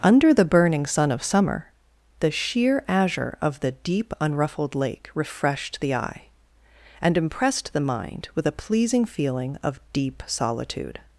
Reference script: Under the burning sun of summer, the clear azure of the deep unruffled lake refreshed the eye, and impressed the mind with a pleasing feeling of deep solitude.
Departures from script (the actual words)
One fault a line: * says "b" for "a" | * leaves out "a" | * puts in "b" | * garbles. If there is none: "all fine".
* says "sheer" for "clear"